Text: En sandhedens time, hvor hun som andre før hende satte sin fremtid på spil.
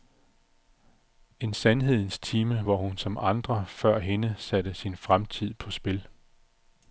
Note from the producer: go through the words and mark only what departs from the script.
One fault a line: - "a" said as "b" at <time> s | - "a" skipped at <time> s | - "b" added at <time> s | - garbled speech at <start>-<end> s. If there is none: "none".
none